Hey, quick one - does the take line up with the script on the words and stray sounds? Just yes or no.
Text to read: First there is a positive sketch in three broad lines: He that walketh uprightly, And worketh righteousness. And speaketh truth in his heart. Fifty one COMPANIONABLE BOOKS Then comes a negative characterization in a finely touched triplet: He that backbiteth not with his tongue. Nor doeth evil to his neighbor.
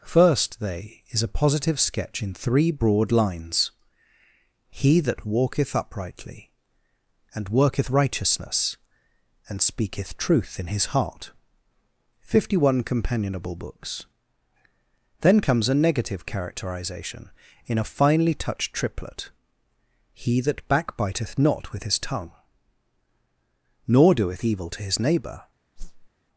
no